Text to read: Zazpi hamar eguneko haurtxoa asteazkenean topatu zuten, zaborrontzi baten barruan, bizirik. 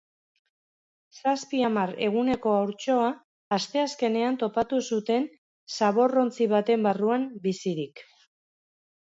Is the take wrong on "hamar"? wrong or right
right